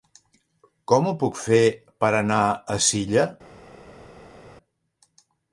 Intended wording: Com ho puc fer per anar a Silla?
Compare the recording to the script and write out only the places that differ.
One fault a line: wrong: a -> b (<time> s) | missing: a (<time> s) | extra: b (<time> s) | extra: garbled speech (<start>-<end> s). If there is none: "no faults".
no faults